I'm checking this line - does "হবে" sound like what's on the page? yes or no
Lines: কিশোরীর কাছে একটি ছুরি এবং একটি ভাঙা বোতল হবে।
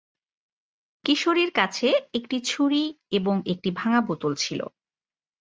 no